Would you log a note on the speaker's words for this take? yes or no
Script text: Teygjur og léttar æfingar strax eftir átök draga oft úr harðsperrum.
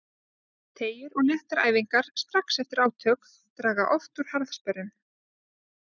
no